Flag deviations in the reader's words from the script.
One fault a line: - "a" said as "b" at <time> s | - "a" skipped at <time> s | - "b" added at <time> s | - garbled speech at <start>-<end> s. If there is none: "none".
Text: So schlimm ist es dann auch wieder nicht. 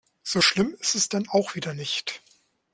none